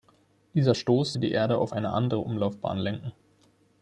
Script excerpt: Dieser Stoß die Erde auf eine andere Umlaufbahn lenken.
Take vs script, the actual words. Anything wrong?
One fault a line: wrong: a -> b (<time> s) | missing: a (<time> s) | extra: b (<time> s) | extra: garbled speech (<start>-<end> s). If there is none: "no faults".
no faults